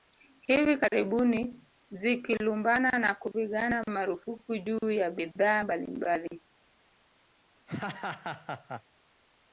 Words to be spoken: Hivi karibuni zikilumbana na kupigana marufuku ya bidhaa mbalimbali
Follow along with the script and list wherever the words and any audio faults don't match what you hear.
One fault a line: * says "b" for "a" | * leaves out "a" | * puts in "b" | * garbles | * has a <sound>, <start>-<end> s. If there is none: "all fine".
* puts in "juu"
* has a laugh, 7.7-8.8 s